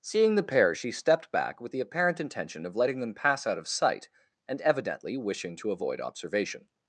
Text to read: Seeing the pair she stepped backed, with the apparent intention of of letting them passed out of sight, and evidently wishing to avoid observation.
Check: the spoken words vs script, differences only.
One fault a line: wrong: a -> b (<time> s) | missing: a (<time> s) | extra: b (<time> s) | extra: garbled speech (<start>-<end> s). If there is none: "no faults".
wrong: backed -> back (1.3 s)
missing: of (2.7 s)
wrong: passed -> pass (3.1 s)